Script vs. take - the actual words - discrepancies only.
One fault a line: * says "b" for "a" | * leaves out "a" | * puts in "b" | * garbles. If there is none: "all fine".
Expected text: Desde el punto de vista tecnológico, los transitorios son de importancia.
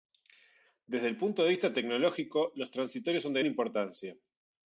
all fine